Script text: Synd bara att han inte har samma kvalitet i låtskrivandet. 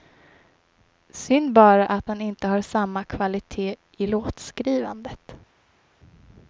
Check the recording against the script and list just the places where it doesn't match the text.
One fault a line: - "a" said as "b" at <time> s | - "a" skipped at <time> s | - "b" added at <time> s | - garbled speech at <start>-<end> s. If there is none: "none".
none